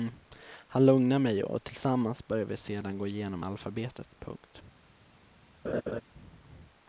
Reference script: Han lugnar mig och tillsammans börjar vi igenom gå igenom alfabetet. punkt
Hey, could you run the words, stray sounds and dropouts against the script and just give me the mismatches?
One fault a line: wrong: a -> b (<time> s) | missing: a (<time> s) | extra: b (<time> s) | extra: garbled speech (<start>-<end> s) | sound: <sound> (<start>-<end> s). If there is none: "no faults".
wrong: igenom -> sedan (2.6 s)
sound: laugh (5.6-6.0 s)